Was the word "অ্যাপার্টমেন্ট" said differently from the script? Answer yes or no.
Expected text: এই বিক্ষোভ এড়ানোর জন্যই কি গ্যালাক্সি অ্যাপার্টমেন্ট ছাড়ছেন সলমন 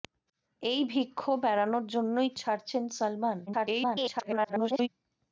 yes